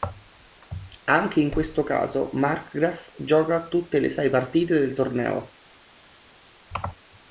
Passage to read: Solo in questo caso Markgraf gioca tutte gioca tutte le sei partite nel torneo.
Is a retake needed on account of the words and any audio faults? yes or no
yes